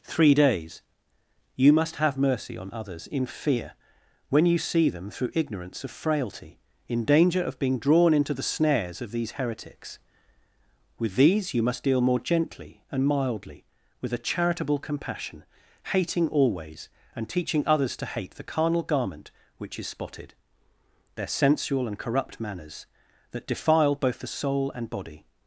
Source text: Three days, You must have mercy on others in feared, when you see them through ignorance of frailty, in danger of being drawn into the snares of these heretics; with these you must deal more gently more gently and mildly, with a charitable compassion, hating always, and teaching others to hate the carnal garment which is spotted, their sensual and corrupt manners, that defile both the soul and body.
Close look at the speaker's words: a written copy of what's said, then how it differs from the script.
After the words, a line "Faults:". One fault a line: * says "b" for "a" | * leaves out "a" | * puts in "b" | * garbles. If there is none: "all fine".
Three days, You must have mercy on others in fear, when you see them through ignorance of frailty, in danger of being drawn into the snares of these heretics; with these you must deal more gently and mildly, with a charitable compassion, hating always, and teaching others to hate the carnal garment which is spotted, their sensual and corrupt manners, that defile both the soul and body.
Faults:
* says "fear" for "feared"
* leaves out "more gently"